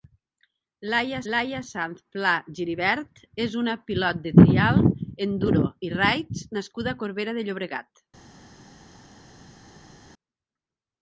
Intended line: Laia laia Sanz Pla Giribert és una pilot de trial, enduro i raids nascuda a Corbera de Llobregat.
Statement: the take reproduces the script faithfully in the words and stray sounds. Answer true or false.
true